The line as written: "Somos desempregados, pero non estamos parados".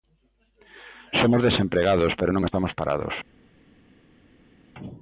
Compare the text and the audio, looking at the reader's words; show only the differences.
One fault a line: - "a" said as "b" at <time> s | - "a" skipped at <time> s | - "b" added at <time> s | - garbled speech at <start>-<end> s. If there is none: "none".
none